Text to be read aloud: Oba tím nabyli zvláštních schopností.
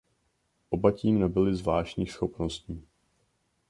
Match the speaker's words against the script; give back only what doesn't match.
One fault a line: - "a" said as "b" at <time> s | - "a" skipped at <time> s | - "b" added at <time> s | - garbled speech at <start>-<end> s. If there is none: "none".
none